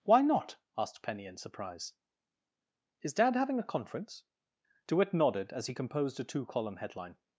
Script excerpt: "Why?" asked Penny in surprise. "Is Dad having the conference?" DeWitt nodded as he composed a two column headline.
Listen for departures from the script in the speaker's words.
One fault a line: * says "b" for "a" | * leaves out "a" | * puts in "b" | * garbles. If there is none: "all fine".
* puts in "not"
* says "a" for "the"